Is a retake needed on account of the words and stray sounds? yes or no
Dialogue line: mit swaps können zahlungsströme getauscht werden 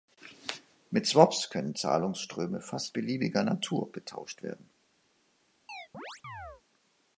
yes